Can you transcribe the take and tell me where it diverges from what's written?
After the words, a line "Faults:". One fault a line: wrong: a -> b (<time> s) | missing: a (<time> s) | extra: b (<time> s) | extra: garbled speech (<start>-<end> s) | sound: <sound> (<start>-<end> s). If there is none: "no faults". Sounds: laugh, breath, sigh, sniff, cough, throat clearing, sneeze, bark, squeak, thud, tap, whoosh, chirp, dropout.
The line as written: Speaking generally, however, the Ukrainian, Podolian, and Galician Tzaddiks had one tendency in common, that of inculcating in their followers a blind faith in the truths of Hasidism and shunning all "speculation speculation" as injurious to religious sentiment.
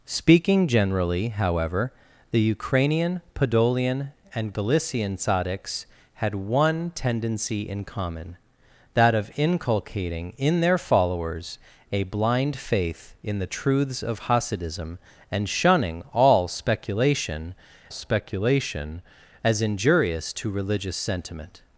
Speaking generally, however, the Ukrainian, Podolian, and Galician Tzaddiks had one tendency in common, that of inculcating in their followers a blind faith in the truths of Hasidism and shunning all "speculation speculation" as injurious to religious sentiment.
Faults:
no faults